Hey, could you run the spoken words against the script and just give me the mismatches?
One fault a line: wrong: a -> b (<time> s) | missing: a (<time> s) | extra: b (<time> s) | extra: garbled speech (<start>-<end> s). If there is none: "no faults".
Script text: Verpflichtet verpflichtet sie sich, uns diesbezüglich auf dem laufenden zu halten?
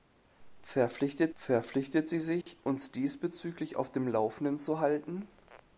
no faults